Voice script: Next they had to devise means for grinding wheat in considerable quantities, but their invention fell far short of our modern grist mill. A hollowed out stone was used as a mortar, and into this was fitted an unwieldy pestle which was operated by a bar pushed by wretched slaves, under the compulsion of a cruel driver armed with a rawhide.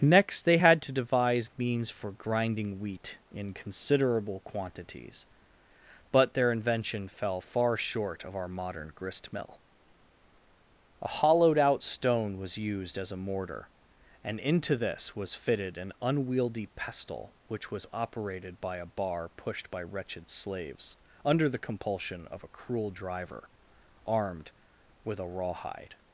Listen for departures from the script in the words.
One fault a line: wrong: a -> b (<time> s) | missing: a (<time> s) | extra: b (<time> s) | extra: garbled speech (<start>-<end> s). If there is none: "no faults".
no faults